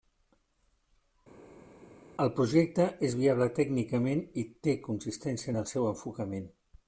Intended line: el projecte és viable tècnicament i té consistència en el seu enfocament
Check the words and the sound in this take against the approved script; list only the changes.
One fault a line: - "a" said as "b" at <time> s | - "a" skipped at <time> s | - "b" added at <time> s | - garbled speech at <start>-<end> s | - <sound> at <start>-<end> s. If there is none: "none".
none